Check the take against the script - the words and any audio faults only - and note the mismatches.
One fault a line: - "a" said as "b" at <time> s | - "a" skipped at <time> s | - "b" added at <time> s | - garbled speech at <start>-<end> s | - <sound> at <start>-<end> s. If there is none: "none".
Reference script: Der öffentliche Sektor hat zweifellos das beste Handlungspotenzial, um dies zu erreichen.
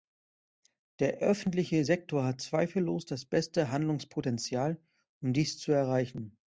none